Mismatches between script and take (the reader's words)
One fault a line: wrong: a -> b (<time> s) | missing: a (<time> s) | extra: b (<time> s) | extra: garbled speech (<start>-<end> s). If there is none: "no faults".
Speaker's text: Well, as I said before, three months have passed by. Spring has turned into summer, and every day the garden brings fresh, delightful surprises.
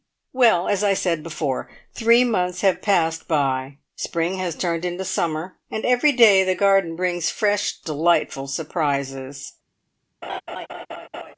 no faults